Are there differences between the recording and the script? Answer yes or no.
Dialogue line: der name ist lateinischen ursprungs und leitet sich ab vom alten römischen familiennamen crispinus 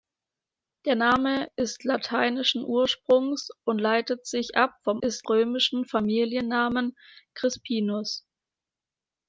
yes